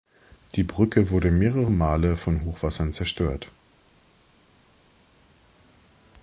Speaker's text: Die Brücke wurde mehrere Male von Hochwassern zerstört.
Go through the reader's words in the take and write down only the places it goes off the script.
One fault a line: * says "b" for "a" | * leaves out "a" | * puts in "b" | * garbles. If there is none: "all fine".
all fine